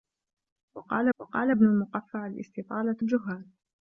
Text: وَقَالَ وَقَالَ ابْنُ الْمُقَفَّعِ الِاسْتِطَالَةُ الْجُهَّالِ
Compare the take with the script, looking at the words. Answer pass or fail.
pass